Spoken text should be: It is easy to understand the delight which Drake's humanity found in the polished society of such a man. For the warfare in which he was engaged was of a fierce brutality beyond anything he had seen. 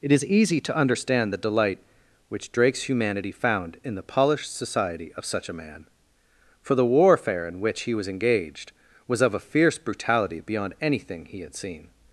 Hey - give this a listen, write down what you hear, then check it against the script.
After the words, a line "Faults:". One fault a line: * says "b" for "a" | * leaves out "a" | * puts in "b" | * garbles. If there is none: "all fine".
It is easy to understand the delight which Drake's humanity found in the polished society of such a man. For the warfare in which he was engaged was of a fierce brutality beyond anything he had seen.
Faults:
all fine